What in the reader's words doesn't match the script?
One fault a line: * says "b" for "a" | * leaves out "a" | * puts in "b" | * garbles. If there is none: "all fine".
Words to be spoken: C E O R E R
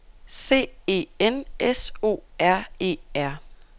* puts in "N S"